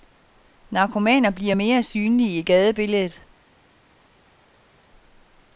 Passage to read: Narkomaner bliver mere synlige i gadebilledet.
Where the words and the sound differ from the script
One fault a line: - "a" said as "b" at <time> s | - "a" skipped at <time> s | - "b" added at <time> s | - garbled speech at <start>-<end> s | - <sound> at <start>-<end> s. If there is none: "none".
none